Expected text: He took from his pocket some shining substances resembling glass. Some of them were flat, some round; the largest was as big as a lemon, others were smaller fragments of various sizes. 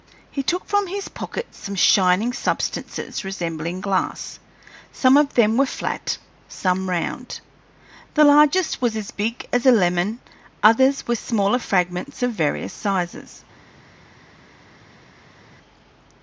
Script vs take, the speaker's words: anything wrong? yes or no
no